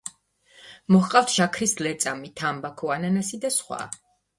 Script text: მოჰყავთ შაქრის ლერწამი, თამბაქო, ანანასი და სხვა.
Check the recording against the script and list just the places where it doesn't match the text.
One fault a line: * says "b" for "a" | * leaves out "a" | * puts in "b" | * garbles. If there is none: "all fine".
all fine